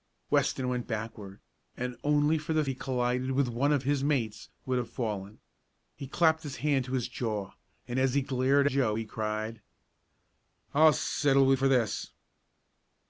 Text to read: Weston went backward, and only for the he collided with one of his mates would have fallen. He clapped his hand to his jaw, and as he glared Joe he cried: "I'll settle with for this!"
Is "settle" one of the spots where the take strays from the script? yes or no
no